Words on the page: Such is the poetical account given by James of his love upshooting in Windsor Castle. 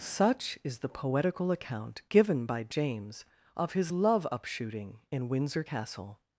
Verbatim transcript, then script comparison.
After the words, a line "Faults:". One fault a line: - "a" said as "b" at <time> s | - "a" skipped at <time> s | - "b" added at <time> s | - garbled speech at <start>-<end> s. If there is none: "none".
Such is the poetical account given by James of his love upshooting in Windsor Castle.
Faults:
none